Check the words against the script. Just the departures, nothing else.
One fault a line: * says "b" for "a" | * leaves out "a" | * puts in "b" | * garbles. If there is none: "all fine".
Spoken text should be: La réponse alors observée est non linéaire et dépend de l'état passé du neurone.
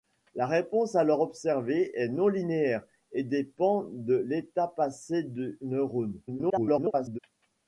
* garbles